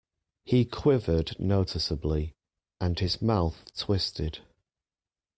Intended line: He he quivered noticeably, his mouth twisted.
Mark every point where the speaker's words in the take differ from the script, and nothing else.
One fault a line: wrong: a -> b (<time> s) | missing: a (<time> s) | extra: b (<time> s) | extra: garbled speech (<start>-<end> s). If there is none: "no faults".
missing: he (0.7 s)
extra: and (2.8 s)